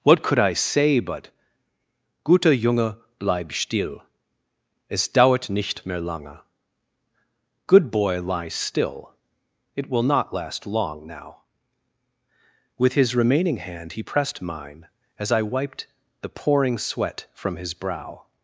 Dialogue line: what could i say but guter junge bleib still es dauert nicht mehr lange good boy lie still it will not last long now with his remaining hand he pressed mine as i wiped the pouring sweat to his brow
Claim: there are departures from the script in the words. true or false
true